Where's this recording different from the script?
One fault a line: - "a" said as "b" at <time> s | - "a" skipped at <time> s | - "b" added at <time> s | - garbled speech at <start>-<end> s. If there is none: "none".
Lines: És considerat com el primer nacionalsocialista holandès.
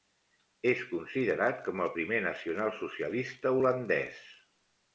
none